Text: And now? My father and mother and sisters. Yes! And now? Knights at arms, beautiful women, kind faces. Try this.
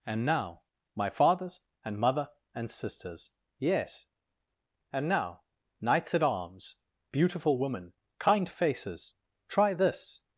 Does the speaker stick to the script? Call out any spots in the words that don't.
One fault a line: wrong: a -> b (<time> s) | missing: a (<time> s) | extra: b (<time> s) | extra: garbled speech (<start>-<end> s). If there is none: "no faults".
wrong: father -> fathers (1.1 s)